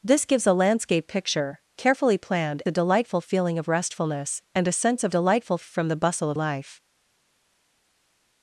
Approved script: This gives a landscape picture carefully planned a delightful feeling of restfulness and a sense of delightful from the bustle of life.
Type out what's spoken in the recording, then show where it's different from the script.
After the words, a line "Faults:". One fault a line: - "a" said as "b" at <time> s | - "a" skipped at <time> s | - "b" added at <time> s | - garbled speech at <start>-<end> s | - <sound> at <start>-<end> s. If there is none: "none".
This gives a landscape picture carefully planned a delightful feeling of restfulness and a sense of delightful from the bustle of life.
Faults:
none